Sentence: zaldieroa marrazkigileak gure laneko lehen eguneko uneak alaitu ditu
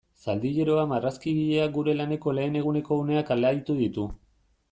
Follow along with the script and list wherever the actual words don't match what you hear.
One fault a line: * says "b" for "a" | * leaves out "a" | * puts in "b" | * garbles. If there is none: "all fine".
all fine